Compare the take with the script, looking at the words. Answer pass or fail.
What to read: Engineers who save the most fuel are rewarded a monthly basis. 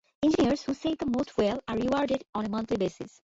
fail